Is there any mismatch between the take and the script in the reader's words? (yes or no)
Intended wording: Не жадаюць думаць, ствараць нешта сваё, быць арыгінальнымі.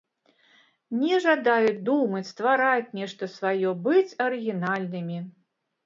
no